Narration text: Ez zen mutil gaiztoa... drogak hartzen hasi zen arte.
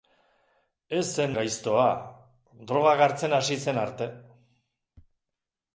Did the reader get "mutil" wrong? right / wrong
wrong